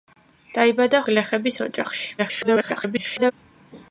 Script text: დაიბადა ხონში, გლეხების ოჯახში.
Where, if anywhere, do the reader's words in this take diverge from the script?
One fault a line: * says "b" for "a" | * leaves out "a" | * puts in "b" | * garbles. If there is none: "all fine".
* leaves out "ხონში"
* garbles